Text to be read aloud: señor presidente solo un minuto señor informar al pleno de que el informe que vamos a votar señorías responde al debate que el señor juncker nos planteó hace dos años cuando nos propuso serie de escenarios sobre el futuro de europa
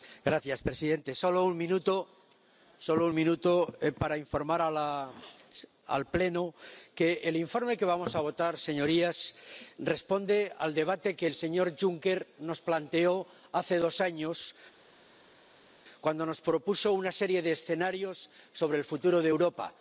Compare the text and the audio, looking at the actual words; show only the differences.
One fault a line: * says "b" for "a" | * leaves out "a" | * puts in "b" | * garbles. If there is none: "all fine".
* says "para" for "señor"
* puts in "una"